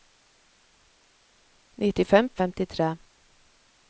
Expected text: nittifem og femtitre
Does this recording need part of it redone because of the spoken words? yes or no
no